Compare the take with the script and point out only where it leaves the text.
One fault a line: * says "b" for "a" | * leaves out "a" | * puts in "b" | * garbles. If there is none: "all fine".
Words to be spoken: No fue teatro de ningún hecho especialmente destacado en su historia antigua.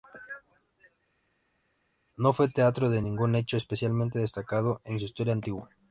all fine